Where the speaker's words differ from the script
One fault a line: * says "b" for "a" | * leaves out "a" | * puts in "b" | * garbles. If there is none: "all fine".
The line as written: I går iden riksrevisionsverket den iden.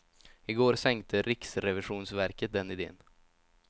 * says "sänkte" for "iden"